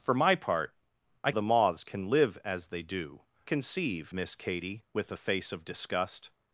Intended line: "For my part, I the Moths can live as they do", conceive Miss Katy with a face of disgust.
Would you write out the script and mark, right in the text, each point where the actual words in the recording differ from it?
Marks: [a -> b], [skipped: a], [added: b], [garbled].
"For my part, I the Moths can live as they do", conceive Miss Katy with a face of disgust.